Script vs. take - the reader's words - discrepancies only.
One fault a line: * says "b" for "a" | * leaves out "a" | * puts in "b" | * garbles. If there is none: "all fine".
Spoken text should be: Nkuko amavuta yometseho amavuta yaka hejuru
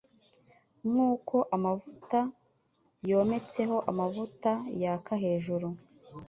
all fine